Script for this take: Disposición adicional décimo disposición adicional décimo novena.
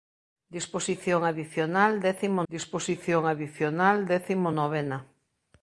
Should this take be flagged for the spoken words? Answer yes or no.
no